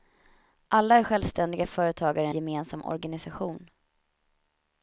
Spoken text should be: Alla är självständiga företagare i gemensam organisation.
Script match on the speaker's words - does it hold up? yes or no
yes